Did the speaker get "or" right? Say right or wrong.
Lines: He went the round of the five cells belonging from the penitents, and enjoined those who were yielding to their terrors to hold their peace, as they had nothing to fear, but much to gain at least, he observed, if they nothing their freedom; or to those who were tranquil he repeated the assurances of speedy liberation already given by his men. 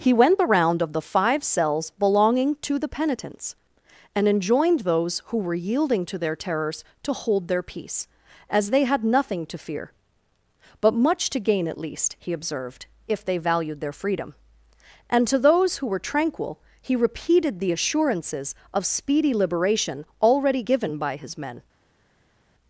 wrong